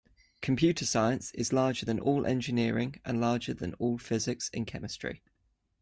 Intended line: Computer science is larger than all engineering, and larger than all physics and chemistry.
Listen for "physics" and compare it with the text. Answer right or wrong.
right